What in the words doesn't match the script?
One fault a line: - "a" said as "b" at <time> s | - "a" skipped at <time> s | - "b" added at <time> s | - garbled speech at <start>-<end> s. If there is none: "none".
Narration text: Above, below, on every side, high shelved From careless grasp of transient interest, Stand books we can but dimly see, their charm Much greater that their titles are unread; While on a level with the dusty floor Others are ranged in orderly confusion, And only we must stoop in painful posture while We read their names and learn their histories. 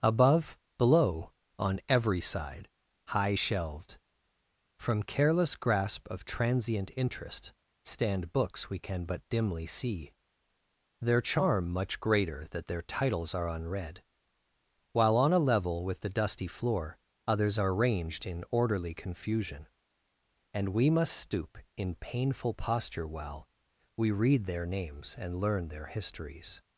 - "only" skipped at 20.7 s